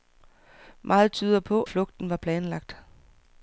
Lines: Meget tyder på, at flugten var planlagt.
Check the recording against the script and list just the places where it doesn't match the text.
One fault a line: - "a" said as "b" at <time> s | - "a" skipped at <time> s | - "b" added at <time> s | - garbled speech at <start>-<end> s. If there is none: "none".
- "at" skipped at 1.6 s